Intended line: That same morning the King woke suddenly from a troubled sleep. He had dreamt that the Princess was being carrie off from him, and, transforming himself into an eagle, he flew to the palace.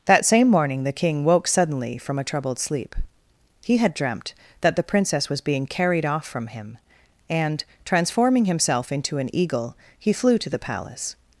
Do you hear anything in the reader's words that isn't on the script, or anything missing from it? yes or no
yes